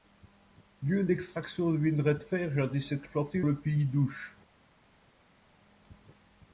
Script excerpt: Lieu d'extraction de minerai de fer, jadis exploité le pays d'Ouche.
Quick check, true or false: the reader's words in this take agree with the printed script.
true